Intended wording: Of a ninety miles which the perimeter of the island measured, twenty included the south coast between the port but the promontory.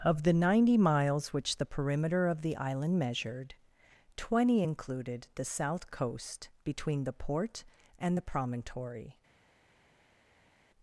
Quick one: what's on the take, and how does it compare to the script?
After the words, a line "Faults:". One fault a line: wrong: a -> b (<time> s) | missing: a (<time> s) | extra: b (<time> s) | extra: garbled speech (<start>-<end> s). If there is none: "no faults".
Of the ninety miles which the perimeter of the island measured, twenty included the south coast between the port and the promontory.
Faults:
wrong: a -> the (0.2 s)
wrong: but -> and (8.0 s)